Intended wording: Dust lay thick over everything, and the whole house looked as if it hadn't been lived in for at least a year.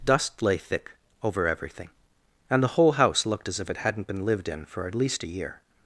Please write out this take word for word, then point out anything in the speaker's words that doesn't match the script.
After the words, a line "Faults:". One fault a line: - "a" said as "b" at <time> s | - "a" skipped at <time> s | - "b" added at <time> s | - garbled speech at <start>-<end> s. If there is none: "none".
Dust lay thick over everything, and the whole house looked as if it hadn't been lived in for at least a year.
Faults:
none